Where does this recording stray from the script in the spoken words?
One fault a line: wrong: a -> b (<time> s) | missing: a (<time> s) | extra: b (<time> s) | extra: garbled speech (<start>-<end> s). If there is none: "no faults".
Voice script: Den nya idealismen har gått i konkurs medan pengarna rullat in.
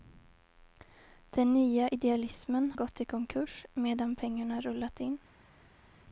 missing: har (2.7 s)